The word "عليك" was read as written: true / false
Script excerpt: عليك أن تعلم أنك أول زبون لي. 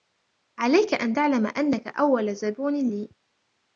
true